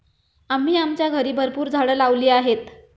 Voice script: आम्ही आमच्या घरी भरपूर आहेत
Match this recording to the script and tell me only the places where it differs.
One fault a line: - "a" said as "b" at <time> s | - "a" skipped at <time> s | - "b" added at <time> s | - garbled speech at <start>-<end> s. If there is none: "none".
- "झाडं लावली" added at 1.7 s